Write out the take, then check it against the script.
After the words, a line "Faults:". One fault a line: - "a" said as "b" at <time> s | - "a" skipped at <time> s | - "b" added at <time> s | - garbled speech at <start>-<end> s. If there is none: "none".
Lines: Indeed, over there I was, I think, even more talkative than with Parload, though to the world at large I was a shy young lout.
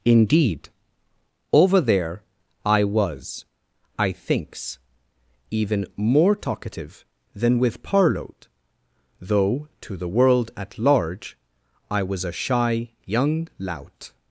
Indeed, over there I was, I thinks, even more talkative than with Parload, though to the world at large I was a shy young lout.
Faults:
- "think" said as "thinks" at 4.1 s